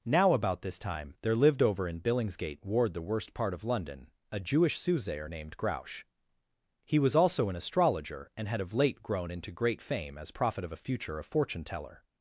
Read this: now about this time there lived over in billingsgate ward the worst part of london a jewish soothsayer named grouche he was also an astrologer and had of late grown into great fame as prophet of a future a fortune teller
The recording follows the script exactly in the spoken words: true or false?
true